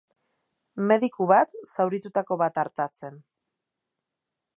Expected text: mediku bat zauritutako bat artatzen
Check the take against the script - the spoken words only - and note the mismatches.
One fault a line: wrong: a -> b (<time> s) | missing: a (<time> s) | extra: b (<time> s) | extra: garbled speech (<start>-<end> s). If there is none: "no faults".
no faults